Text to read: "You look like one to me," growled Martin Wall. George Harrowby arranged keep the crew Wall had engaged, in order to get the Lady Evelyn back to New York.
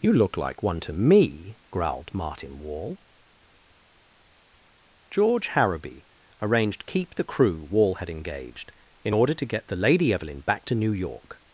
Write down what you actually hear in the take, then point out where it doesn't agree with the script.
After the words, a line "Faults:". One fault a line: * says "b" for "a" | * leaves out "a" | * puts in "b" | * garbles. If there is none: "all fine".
"You look like one to me," growled Martin Wall. George Harrowby arranged keep the crew Wall had engaged, in order to get the Lady Evelyn back to New York.
Faults:
all fine